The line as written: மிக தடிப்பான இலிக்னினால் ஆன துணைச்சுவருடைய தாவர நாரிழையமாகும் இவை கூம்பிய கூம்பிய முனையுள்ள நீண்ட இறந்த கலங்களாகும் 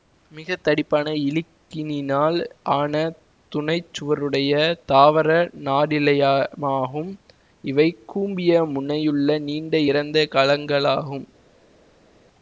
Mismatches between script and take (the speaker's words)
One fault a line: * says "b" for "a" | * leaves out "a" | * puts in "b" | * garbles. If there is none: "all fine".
* leaves out "கூம்பிய"